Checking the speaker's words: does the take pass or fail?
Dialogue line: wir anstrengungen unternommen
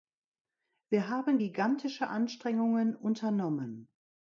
fail